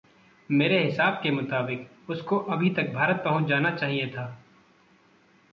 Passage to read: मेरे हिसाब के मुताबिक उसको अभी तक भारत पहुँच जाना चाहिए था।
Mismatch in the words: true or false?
false